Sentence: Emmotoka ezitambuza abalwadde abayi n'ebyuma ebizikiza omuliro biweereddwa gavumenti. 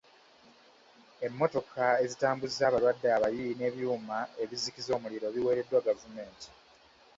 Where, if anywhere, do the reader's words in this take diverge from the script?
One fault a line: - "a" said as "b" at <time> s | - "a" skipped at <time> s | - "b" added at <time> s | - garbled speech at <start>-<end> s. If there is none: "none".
none